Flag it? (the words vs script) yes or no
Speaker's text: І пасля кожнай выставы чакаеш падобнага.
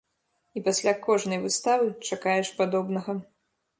no